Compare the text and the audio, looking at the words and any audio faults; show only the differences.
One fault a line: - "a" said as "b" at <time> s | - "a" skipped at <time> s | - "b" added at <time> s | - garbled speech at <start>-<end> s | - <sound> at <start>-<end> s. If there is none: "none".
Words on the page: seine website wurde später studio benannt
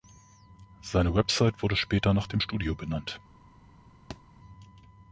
- "nach dem" added at 2.1 s
- thud at 4.1-4.2 s